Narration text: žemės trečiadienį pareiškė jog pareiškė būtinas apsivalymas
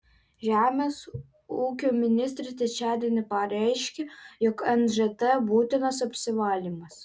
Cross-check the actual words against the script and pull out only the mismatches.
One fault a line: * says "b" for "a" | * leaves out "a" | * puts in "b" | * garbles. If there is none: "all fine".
* puts in "ūkio ministrė"
* says "nžt" for "pareiškė"